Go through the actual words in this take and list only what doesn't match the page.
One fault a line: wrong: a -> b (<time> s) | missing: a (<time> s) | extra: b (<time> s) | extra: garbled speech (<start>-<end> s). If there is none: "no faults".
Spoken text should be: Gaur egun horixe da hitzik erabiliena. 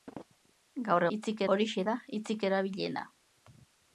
wrong: egun -> hitzik (1.2 s)